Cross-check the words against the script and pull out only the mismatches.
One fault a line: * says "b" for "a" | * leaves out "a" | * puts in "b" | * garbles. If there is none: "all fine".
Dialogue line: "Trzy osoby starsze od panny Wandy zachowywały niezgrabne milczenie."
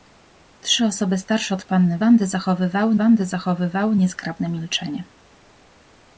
* puts in "Wandy zachowywały"